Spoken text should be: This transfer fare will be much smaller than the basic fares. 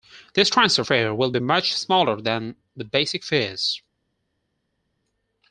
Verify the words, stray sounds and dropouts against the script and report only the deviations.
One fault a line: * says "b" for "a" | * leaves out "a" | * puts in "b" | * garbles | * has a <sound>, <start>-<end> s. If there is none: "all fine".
all fine